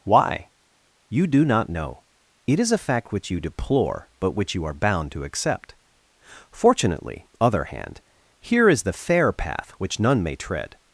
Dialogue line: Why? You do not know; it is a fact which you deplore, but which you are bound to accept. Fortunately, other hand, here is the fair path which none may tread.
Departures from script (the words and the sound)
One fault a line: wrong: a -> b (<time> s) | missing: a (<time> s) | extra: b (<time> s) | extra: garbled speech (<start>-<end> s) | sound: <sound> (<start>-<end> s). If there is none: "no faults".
no faults